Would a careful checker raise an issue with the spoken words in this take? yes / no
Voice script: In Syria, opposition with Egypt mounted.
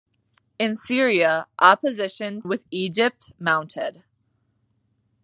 no